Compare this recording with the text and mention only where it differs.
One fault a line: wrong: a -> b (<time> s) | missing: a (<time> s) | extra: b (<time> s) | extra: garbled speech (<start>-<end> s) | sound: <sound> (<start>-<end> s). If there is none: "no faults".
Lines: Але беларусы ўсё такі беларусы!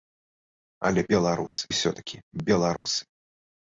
sound: dropout (1.5-1.6 s)
sound: dropout (2.8-2.9 s)